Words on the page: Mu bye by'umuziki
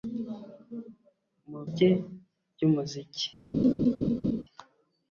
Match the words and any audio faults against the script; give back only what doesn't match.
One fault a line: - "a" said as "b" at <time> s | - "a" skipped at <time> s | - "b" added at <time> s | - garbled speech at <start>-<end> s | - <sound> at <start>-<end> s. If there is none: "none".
- laugh at 3.5-4.4 s